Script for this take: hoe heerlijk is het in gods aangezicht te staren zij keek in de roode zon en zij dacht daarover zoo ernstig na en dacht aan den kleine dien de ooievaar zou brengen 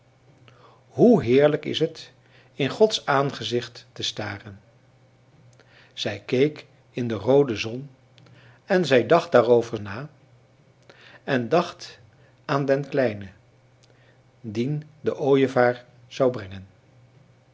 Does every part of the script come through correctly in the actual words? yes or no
no